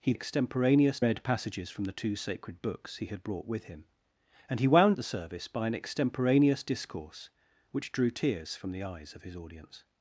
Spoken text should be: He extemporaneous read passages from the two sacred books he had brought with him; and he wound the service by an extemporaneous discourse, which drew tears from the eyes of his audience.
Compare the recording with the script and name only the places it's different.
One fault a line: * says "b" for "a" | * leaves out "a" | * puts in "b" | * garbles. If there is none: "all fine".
all fine